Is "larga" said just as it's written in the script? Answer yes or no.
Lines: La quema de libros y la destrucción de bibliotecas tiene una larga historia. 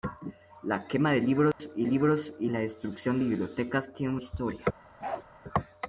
no